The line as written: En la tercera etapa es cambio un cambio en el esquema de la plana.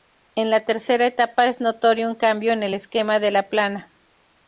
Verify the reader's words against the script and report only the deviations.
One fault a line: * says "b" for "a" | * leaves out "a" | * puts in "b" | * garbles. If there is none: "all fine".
* says "notorio" for "cambio"